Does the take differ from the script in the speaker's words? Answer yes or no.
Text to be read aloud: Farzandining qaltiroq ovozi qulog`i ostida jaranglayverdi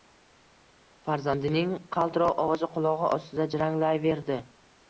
no